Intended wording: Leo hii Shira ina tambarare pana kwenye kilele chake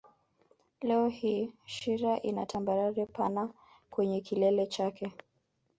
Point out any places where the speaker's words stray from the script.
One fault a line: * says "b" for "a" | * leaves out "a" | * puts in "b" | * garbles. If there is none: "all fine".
all fine